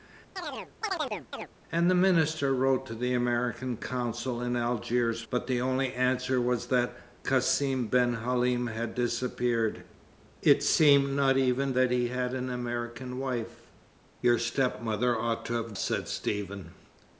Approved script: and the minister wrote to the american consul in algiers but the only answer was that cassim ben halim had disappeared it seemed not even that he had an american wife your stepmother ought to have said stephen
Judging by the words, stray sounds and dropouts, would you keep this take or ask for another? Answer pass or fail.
fail